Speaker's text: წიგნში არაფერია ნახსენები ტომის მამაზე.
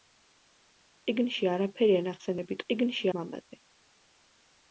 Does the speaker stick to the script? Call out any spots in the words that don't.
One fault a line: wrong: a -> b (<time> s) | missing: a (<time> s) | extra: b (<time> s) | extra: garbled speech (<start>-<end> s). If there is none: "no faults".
wrong: ტომის -> წიგნში (2.7 s)